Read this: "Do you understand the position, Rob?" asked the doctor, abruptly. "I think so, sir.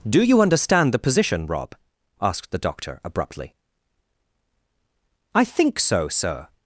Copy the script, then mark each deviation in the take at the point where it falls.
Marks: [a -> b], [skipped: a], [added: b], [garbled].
"Do you understand the position, Rob?" asked the doctor, abruptly. "I think so, sir.